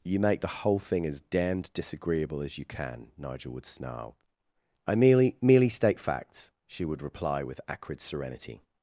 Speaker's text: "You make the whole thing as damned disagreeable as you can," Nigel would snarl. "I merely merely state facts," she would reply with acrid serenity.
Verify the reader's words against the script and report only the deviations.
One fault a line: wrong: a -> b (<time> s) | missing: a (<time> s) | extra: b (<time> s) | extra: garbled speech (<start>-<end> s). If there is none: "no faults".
no faults